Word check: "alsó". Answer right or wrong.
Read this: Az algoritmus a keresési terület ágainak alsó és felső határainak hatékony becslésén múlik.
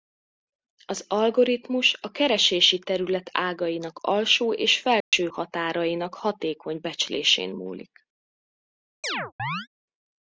right